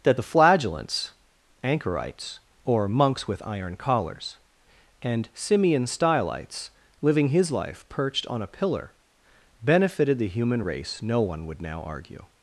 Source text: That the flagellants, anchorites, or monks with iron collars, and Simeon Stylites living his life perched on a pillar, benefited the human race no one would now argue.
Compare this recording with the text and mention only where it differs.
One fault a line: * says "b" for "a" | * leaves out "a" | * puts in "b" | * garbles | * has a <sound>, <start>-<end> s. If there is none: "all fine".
all fine